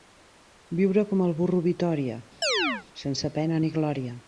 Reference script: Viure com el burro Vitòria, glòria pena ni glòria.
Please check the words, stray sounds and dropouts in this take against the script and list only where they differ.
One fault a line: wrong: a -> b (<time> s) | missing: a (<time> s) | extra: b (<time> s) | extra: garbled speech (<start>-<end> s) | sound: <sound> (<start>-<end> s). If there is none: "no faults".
sound: chirp (2.4-2.9 s)
wrong: glòria -> sense (3.0 s)